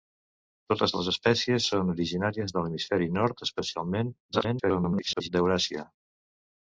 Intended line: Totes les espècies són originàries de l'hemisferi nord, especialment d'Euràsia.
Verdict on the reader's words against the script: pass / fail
fail